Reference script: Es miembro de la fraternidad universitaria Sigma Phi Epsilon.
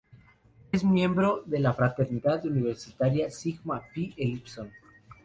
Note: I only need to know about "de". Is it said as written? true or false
true